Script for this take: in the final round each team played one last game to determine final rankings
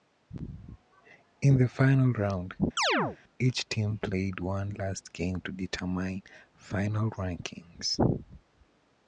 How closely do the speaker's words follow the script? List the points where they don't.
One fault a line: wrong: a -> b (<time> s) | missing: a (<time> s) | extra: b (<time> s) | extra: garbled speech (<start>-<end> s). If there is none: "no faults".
no faults